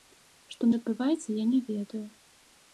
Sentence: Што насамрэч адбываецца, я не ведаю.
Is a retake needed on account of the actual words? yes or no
yes